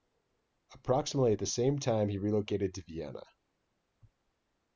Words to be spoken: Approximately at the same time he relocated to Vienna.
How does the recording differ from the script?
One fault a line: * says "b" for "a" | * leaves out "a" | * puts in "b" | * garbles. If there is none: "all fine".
all fine